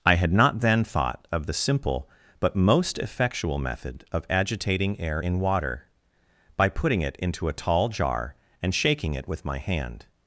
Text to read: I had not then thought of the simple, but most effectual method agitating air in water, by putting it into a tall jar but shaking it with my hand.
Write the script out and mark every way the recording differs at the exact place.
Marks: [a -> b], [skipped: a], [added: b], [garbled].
I had not then thought of the simple, but most effectual method [added: of] agitating air in water, by putting it into a tall jar [but -> and] shaking it with my hand.